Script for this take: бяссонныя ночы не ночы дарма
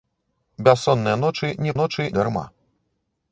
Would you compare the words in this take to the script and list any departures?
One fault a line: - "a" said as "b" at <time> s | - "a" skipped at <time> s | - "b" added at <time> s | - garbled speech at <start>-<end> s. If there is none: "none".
none